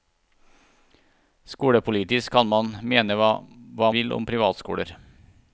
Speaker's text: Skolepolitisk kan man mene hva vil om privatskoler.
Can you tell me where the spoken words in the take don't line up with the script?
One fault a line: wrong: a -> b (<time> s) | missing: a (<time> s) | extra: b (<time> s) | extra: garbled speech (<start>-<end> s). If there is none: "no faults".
no faults